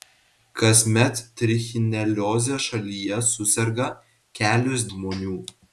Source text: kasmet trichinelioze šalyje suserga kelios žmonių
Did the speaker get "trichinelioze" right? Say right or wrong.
right